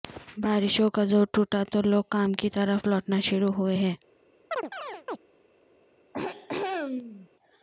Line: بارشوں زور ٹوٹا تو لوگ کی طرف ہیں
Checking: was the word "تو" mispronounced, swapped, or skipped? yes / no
no